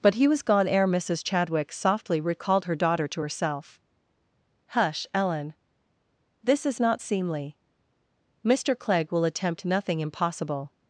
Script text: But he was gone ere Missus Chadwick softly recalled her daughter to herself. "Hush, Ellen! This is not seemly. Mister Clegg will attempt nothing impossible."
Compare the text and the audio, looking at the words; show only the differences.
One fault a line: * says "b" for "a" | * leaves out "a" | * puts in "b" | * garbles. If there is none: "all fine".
all fine